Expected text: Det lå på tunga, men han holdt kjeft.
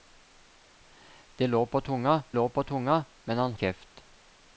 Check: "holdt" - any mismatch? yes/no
yes